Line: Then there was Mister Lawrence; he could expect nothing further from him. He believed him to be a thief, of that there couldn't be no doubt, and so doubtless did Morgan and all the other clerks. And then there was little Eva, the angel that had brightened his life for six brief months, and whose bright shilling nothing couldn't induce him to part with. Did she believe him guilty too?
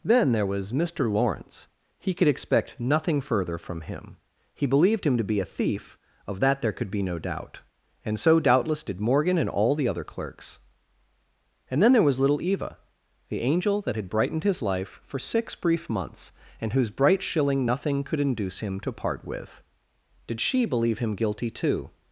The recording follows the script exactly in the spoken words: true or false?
false